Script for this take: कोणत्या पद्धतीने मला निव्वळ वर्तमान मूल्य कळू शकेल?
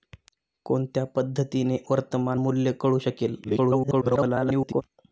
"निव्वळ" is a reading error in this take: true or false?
true